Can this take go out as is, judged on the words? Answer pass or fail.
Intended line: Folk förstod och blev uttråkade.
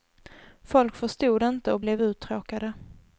fail